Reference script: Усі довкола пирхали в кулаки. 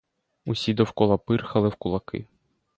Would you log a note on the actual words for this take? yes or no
no